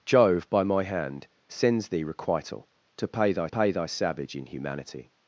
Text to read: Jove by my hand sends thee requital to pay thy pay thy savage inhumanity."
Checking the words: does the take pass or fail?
pass